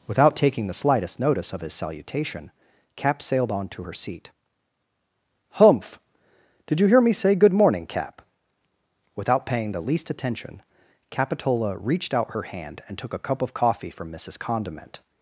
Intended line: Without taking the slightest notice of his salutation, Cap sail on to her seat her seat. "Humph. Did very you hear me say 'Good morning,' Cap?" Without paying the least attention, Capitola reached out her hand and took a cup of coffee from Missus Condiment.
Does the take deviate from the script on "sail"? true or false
true